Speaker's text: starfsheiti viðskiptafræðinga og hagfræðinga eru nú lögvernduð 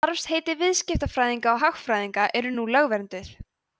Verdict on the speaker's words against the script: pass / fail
pass